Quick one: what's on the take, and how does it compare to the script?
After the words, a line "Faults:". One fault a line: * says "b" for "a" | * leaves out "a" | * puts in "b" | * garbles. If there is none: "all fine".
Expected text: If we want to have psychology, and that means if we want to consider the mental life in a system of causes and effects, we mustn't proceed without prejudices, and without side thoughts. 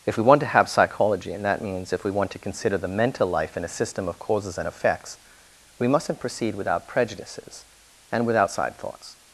If we want to have psychology, and that means if we want to consider the mental life in a system of causes and effects, we mustn't proceed without prejudices, and without side thoughts.
Faults:
all fine